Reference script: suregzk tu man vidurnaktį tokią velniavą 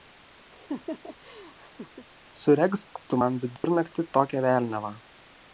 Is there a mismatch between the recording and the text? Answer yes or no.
no